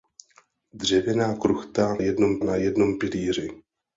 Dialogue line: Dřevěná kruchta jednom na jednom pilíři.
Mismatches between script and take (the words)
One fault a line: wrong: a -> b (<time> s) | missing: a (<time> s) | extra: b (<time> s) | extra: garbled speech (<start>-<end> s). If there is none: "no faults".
no faults